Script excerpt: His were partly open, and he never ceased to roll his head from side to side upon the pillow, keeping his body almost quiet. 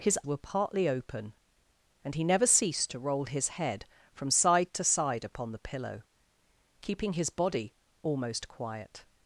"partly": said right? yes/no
yes